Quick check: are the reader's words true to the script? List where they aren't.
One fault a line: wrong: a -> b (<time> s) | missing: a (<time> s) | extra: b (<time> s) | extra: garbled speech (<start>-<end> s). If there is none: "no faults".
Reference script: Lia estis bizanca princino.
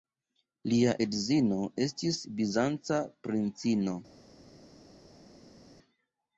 extra: edzino (1.0 s)